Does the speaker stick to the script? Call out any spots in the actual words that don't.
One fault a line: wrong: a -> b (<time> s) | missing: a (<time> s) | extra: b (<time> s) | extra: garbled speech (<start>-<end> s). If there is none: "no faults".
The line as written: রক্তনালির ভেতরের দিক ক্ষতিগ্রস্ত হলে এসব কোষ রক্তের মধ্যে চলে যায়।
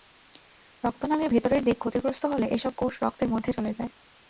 no faults